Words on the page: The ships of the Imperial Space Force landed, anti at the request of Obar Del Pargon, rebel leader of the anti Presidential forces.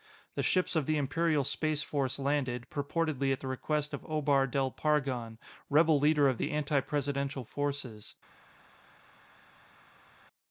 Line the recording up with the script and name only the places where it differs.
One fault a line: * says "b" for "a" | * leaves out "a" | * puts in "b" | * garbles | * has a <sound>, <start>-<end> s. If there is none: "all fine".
* says "purportedly" for "anti"